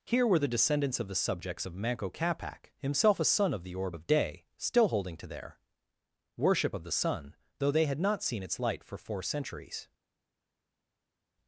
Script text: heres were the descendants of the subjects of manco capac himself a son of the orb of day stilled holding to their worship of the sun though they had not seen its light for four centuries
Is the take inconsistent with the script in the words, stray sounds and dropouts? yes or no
yes